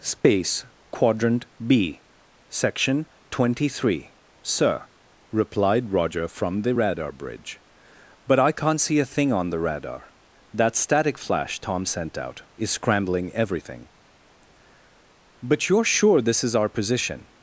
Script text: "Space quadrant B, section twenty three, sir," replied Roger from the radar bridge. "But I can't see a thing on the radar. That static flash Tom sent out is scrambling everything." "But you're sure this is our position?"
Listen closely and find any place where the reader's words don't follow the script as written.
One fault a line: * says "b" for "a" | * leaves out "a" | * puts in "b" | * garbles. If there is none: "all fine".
all fine